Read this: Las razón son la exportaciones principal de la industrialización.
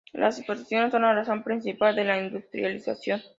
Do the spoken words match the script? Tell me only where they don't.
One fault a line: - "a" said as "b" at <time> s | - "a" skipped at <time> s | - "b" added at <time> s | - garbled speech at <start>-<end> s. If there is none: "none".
- "razón" said as "exportaciones" at 0.4 s
- "exportaciones" said as "razón" at 1.1 s